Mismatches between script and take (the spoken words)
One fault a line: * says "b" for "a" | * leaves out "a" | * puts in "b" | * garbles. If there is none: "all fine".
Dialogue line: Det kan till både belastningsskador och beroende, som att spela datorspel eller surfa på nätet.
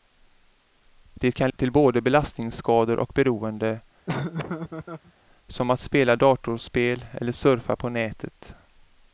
all fine